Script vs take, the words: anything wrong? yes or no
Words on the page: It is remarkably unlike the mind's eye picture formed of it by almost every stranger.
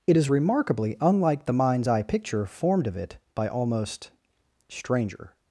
yes